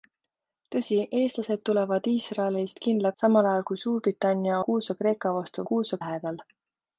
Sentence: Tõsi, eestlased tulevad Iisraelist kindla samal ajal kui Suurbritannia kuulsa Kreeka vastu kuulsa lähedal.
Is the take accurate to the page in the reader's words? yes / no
yes